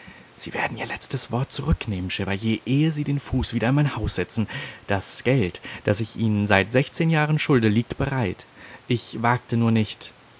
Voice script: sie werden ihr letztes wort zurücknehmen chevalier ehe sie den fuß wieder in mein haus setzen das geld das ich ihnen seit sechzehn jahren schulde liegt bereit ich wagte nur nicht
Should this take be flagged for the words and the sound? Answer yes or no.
no